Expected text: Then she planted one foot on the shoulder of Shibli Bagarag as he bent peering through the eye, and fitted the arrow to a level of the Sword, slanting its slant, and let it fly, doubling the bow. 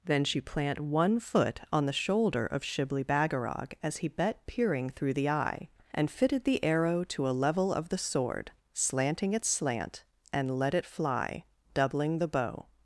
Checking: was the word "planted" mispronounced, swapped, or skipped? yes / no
yes